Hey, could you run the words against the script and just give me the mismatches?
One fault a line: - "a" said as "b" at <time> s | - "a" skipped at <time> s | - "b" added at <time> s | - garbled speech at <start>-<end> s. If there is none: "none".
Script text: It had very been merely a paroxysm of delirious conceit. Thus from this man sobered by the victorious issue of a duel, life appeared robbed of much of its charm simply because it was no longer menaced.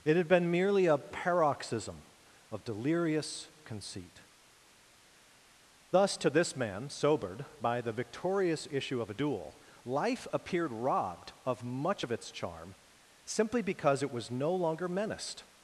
- "very" skipped at 0.3 s
- "from" said as "to" at 6.2 s